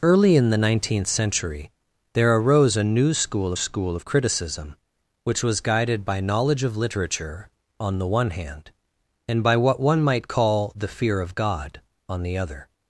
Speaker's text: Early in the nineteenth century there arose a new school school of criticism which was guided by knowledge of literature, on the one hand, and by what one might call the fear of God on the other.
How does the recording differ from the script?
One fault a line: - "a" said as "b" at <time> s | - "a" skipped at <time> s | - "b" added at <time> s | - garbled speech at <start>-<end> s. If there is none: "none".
none